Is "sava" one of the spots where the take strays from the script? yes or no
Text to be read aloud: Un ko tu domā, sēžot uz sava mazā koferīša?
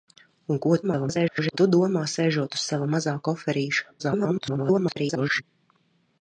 no